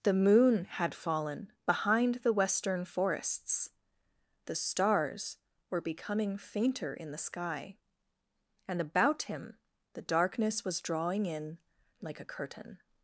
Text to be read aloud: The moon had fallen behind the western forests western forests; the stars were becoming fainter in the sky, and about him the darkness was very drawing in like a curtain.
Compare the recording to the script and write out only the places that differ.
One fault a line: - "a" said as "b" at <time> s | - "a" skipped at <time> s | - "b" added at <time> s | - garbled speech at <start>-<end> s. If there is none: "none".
- "western forests" skipped at 3.7 s
- "very" skipped at 10.8 s